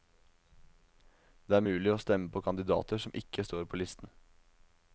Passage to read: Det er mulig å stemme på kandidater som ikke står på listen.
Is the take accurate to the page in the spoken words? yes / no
yes